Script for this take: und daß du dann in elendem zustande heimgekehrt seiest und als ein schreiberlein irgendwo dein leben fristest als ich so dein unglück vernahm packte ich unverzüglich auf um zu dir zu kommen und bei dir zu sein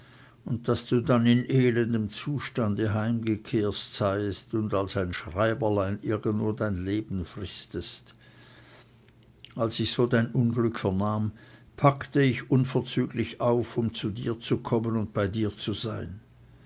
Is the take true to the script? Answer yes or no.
yes